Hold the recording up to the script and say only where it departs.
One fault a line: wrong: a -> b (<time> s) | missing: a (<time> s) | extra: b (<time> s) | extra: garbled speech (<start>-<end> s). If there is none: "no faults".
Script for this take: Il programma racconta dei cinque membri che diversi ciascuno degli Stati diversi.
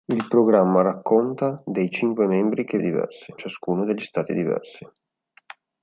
no faults